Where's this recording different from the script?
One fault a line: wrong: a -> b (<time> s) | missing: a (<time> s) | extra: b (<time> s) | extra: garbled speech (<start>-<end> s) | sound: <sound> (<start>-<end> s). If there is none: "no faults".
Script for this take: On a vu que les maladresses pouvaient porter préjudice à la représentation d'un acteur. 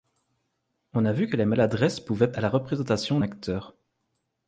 missing: porter préjudice (2.3 s)
missing: d'un (3.2 s)